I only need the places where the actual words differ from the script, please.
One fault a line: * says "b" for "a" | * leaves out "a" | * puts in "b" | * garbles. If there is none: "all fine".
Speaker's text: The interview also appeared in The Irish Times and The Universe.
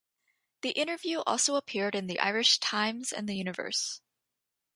all fine